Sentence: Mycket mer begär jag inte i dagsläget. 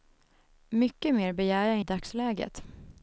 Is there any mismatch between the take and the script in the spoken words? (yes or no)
yes